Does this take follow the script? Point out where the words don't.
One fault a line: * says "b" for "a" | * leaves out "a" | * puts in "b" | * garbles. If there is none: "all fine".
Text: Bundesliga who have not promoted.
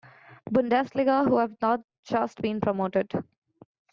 * puts in "just been"